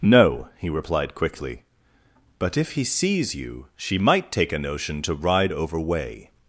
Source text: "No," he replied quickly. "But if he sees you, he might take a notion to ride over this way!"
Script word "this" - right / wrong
wrong